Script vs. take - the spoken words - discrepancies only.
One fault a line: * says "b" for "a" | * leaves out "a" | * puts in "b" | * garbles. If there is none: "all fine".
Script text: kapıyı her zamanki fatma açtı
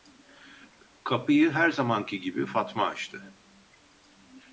* puts in "gibi"